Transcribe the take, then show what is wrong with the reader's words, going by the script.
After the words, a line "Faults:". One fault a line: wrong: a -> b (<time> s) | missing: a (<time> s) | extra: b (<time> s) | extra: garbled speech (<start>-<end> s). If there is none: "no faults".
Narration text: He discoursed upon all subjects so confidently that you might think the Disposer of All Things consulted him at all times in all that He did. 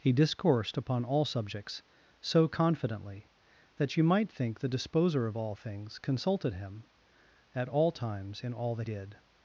He discoursed upon all subjects so confidently that you might think the Disposer of All Things consulted him at all times in all that Did.
Faults:
missing: He (8.9 s)